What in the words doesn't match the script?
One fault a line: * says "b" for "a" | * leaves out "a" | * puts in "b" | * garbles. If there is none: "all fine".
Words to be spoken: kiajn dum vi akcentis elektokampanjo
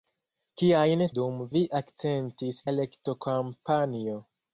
all fine